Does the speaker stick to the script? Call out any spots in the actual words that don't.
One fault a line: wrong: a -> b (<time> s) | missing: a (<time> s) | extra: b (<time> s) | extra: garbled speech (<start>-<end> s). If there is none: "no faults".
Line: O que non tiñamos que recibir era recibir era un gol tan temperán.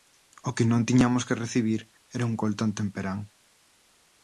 missing: recibir era (2.3 s)